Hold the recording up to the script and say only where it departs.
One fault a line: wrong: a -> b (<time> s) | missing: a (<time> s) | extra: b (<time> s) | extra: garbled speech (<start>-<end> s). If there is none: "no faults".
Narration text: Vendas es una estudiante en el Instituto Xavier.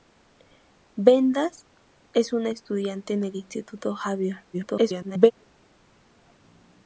extra: garbled speech (4.5-5.3 s)